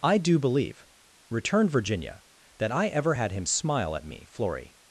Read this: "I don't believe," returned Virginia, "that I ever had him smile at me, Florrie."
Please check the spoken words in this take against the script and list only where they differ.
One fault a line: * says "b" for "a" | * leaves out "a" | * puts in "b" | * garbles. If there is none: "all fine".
* says "do" for "don't"